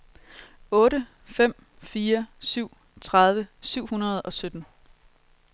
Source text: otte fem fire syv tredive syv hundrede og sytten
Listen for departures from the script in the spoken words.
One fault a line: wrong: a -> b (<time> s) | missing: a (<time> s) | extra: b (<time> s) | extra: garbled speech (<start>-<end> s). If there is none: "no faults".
no faults